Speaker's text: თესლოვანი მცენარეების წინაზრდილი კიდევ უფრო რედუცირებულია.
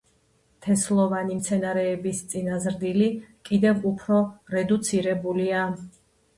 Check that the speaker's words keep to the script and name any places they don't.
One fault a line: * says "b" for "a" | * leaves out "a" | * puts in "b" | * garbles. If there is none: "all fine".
all fine